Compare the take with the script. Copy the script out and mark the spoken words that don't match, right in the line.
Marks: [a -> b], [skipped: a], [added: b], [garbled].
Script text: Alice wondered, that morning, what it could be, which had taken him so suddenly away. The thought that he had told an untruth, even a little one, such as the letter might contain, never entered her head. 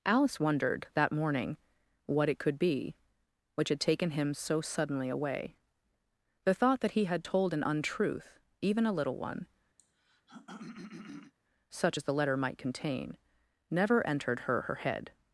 Alice wondered, that morning, what it could be, which had taken him so suddenly away. The thought that he had told an untruth, even a little one, such as the letter might contain, never entered her [added: her] head.